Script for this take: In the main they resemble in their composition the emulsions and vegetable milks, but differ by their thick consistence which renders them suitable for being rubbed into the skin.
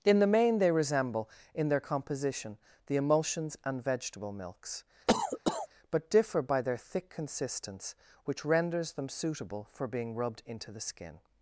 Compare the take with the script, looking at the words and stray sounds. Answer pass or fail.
fail